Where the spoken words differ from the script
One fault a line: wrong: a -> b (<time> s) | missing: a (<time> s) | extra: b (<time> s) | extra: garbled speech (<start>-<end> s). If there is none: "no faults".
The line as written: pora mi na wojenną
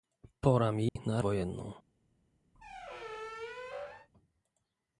no faults